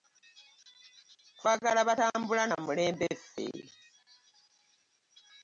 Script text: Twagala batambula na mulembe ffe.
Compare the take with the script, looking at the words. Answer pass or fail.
pass